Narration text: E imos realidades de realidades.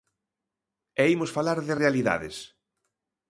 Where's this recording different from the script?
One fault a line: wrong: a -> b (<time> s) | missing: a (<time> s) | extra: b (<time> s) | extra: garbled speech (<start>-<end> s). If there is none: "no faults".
wrong: realidades -> falar (1.4 s)